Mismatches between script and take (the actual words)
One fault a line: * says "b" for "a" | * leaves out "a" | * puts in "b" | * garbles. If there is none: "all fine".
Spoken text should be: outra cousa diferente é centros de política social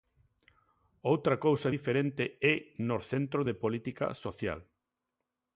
* puts in "nos"